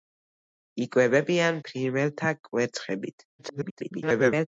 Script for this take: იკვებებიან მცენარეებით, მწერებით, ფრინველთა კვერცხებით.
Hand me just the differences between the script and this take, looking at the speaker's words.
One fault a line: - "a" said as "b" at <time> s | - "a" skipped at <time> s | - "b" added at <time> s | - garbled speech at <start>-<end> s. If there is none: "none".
- "მცენარეებით მწერებით" skipped at 1.6 s
- garbled speech at 3.4-4.5 s